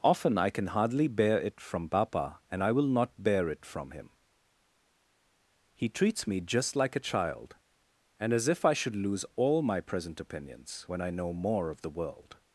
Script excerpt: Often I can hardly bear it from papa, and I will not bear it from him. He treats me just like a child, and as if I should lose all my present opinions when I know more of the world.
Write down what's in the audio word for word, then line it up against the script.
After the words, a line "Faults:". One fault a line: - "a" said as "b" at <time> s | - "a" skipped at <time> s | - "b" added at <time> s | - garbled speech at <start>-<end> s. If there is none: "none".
Often I can hardly bear it from papa, and I will not bear it from him. He treats me just like a child, and as if I should lose all my present opinions when I know more of the world.
Faults:
none